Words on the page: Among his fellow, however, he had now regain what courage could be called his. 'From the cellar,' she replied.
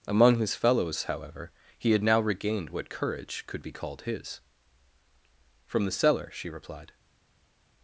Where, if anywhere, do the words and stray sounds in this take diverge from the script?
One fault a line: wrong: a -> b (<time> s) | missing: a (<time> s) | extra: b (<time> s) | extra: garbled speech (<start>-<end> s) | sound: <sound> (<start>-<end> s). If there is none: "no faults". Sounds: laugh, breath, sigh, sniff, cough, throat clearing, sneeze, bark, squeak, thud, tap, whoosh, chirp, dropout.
wrong: fellow -> fellows (0.6 s)
wrong: regain -> regained (2.2 s)